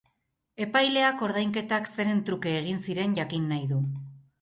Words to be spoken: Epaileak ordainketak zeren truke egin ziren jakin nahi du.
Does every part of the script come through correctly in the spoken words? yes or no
yes